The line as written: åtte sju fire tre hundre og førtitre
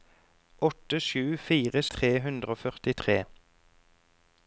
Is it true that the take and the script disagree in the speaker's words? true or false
false